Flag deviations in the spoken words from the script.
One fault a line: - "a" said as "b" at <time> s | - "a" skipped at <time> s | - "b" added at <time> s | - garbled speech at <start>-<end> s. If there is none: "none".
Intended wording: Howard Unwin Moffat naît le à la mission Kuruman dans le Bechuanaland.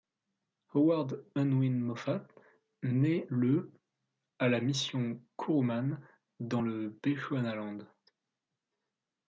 none